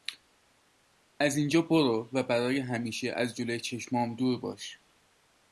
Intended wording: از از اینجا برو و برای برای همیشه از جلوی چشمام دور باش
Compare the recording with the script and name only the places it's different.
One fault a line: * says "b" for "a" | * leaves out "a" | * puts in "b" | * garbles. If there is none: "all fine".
* leaves out "از"
* leaves out "برای"